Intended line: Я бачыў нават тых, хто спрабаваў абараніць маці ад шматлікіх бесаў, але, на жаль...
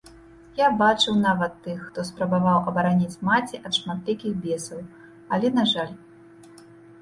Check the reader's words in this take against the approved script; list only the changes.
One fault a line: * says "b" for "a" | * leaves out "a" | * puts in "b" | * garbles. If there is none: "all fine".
all fine